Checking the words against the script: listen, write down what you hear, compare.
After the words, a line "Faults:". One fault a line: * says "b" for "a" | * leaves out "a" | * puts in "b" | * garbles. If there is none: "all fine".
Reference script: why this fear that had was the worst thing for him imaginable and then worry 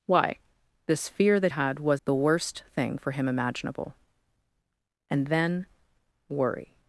why this fear that had was the worst thing for him imaginable and then worry
Faults:
all fine